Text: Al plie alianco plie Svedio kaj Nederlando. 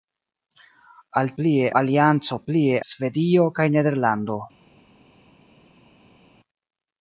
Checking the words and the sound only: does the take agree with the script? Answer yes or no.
yes